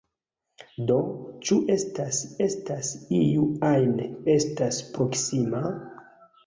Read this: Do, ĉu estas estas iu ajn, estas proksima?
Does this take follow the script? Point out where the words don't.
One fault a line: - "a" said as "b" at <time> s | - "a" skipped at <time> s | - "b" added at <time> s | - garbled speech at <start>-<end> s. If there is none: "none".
none